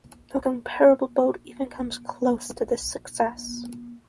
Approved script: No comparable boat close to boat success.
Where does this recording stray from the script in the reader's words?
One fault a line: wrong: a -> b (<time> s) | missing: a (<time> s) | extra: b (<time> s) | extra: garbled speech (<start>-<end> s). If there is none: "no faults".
extra: even comes (1.4 s)
wrong: boat -> this (2.6 s)